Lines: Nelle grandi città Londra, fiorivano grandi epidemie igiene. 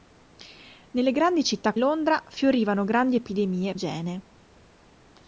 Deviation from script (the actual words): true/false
false